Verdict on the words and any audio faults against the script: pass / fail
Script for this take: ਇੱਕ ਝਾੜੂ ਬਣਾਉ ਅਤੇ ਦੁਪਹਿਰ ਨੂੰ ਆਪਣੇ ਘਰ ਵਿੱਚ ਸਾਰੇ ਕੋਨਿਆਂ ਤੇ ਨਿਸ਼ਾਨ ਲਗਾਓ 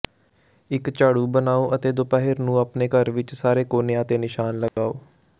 fail